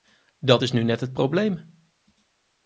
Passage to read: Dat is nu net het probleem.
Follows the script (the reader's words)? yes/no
yes